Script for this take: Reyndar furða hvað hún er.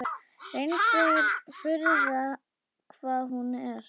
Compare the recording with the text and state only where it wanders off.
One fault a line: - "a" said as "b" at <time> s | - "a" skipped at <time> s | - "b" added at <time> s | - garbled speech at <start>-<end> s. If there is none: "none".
none